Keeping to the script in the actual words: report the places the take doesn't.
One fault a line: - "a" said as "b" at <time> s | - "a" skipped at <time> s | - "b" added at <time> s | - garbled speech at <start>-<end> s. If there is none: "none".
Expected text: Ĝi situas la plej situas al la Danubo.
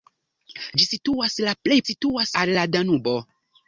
none